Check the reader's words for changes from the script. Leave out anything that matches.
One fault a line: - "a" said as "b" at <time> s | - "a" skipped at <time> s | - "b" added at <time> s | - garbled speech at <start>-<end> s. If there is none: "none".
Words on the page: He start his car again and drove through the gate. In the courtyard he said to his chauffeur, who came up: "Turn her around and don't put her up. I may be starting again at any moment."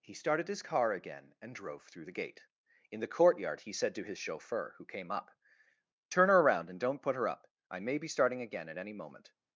- "start" said as "started" at 0.1 s